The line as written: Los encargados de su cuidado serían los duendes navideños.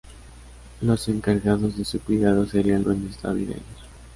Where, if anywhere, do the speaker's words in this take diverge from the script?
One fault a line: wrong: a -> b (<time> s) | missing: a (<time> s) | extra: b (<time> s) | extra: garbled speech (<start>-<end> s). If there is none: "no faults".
missing: los (2.9 s)